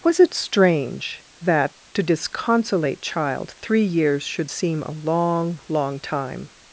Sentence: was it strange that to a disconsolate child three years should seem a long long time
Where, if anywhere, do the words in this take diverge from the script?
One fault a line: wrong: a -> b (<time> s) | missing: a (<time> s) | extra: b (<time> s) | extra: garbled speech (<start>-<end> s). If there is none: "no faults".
missing: a (2.0 s)